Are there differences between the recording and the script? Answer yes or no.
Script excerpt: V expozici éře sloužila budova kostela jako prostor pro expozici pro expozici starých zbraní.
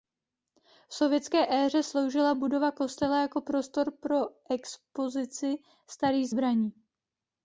yes